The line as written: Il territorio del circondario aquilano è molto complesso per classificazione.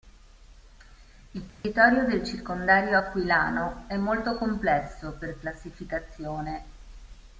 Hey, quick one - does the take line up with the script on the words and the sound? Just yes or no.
no